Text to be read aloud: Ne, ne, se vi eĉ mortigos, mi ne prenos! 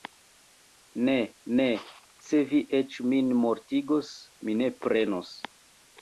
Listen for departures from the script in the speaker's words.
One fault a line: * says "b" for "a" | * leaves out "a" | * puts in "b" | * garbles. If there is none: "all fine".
* puts in "min"